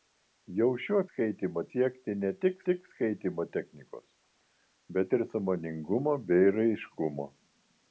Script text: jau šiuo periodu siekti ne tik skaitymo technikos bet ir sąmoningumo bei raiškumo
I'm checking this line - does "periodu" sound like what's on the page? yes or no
no